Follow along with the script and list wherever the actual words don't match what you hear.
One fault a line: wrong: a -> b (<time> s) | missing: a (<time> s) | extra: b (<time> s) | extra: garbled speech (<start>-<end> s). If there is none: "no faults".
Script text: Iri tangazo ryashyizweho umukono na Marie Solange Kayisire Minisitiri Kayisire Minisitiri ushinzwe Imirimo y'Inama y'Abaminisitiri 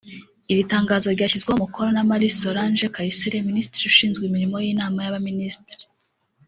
missing: Kayisire Minisitiri (3.9 s)